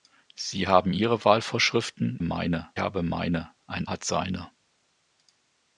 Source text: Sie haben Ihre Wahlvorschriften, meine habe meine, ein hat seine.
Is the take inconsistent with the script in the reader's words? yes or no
no